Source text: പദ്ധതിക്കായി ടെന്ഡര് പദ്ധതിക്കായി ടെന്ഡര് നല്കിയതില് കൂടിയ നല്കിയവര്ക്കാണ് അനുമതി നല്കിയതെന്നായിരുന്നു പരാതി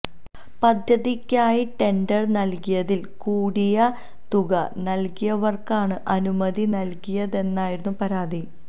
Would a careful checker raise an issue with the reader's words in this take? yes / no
yes